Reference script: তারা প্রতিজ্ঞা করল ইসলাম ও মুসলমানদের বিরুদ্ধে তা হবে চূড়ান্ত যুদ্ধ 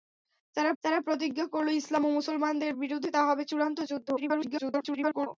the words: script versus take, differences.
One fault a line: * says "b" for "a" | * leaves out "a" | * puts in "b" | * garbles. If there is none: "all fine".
* puts in "তারা"
* garbles